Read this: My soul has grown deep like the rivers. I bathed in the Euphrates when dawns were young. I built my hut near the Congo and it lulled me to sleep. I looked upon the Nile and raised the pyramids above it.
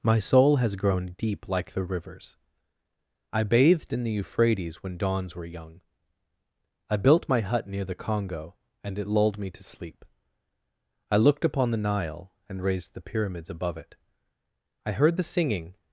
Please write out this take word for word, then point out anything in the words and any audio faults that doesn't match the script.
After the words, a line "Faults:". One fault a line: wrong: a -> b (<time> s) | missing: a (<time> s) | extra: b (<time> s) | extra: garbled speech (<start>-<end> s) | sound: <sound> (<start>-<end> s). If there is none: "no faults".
My soul has grown deep like the rivers. I bathed in the Euphrates when dawns were young. I built my hut near the Congo and it lulled me to sleep. I looked upon the Nile and raised the pyramids above it. I heard the singing
Faults:
extra: I heard the singing (14.8 s)